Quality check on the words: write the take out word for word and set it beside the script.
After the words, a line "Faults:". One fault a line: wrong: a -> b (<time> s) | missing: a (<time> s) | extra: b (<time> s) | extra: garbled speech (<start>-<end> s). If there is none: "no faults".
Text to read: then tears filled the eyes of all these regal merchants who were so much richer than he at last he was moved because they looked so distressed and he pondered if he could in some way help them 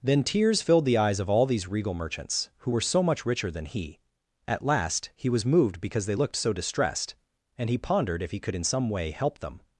then tears filled the eyes of all these regal merchants who were so much richer than he at last he was moved because they looked so distressed and he pondered if he could in some way help them
Faults:
no faults